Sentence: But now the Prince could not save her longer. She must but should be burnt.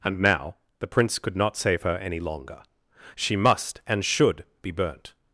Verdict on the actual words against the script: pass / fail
fail